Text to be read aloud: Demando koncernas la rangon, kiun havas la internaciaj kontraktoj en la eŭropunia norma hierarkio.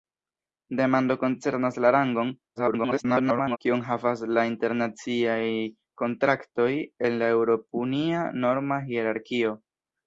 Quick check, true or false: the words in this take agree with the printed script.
false